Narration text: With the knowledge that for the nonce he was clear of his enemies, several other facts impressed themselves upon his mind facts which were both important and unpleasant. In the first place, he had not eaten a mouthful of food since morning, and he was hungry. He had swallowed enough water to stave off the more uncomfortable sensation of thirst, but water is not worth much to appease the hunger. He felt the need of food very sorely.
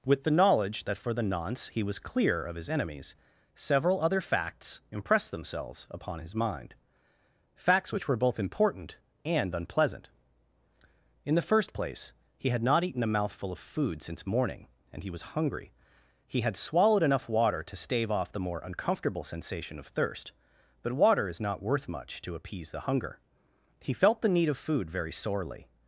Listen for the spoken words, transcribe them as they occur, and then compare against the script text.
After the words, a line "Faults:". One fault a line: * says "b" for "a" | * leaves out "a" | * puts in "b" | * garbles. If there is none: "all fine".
With the knowledge that for the nonce he was clear of his enemies, several other facts impressed themselves upon his mind facts which were both important and unpleasant. In the first place, he had not eaten a mouthful of food since morning, and he was hungry. He had swallowed enough water to stave off the more uncomfortable sensation of thirst, but water is not worth much to appease the hunger. He felt the need of food very sorely.
Faults:
all fine